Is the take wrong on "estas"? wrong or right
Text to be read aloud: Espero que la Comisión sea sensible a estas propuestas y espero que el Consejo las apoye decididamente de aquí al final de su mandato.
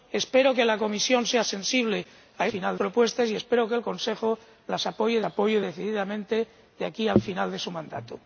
wrong